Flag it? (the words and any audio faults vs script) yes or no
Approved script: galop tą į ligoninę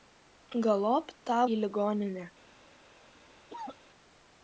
yes